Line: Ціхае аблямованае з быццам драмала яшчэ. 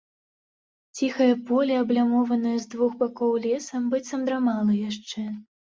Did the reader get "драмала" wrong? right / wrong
right